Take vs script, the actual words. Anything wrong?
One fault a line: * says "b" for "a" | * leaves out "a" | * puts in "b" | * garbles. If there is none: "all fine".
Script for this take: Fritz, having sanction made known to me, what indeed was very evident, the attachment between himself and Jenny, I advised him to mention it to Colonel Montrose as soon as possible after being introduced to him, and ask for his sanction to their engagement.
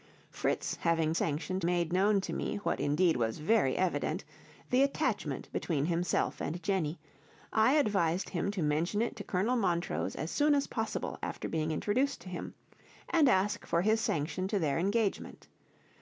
all fine